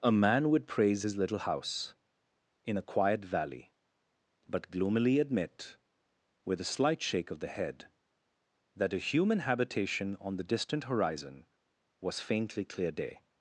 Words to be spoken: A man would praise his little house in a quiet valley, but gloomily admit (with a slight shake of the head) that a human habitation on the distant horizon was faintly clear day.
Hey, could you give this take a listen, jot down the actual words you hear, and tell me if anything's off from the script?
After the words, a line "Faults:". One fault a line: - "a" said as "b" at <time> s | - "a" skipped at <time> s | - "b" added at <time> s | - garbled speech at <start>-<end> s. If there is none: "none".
A man would praise his little house in a quiet valley, but gloomily admit (with a slight shake of the head) that a human habitation on the distant horizon was faintly clear day.
Faults:
none